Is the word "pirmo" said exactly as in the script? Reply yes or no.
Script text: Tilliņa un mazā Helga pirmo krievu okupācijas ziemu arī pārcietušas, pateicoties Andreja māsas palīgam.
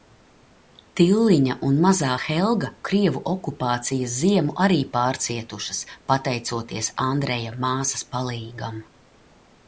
no